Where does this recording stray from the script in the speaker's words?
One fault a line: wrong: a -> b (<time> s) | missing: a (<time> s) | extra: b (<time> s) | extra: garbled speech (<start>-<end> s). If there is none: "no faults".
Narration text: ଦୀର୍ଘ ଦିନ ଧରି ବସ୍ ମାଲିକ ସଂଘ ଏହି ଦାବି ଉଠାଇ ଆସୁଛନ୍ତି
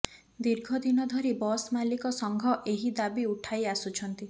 no faults